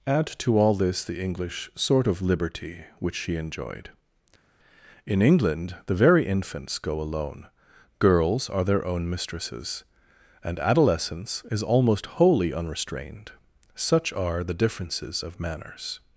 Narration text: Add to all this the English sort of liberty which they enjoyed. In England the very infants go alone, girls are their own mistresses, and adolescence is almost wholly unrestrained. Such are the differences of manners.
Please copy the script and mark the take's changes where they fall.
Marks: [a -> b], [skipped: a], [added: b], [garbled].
Add to all this the English sort of liberty which [they -> she] enjoyed. In England the very infants go alone, girls are their own mistresses, and adolescence is almost wholly unrestrained. Such are the differences of manners.